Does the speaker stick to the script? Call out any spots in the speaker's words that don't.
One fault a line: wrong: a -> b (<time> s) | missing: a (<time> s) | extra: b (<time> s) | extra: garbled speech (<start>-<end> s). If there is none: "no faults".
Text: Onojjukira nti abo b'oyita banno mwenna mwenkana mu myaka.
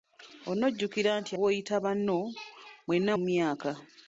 missing: abo (1.3 s)
missing: mwenkana (3.1 s)